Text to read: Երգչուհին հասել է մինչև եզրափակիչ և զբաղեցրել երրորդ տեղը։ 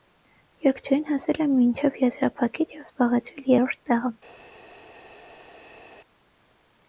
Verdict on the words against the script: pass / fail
pass